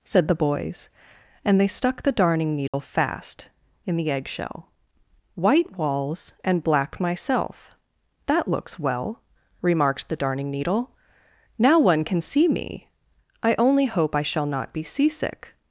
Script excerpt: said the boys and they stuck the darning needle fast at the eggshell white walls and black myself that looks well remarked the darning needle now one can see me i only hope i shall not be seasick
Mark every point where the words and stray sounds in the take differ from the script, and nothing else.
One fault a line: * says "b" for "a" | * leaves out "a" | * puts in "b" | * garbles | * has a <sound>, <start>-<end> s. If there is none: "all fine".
* has a dropout, 2.7-2.7 s
* says "in" for "at"